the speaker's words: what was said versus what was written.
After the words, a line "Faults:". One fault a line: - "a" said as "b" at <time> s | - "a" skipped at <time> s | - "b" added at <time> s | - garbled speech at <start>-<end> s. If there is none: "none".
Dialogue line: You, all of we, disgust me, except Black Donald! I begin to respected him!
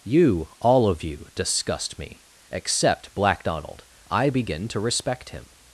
You, all of you, disgust me, except Black Donald! I begin to respect him!
Faults:
- "we" said as "you" at 1.0 s
- "respected" said as "respect" at 4.8 s